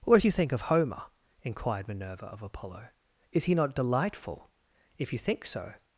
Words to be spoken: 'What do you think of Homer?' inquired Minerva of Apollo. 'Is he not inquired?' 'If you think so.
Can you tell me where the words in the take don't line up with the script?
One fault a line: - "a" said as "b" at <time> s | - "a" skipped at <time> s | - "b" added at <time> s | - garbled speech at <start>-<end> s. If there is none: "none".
- "inquired" said as "delightful" at 3.8 s